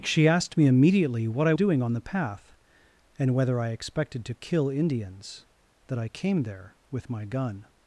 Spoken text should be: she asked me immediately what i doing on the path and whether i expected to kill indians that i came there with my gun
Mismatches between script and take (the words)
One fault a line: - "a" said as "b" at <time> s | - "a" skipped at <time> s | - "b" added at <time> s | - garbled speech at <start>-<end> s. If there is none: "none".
none